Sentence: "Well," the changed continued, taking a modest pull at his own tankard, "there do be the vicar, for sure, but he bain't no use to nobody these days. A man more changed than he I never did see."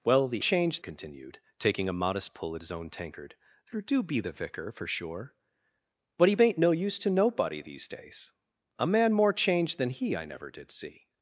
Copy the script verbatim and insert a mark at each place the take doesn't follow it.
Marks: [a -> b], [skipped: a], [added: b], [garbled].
"Well," the changed continued, taking a modest pull at his own tankard, "there do be the vicar, for sure, but he bain't no use to nobody these days. A man more changed than he I never did see."